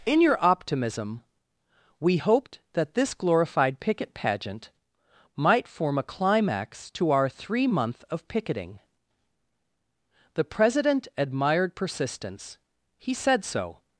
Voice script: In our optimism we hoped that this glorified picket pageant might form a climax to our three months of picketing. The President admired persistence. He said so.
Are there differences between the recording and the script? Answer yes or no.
yes